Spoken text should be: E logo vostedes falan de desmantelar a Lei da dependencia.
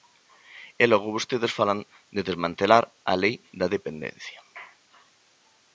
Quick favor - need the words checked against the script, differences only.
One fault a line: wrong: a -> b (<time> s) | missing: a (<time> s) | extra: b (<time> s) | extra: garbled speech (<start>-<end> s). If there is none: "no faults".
no faults